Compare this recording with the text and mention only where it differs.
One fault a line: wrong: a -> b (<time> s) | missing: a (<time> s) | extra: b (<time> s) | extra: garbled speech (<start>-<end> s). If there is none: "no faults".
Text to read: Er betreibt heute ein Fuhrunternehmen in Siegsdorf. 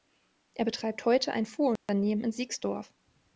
no faults